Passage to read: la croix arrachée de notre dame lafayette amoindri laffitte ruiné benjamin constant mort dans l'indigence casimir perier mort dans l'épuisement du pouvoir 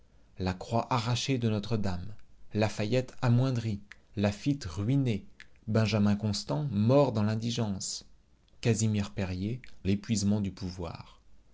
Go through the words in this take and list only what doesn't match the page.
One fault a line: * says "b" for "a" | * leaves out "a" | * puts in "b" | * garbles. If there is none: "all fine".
* leaves out "mort dans"